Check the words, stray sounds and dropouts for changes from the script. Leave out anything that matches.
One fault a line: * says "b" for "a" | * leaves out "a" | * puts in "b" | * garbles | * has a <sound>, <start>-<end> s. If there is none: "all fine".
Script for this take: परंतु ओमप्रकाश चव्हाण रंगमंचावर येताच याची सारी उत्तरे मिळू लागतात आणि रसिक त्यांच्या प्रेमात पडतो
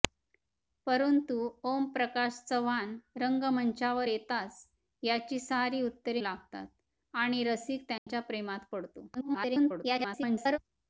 * leaves out "मिळू"
* has a dropout, 8.0-8.1 s
* garbles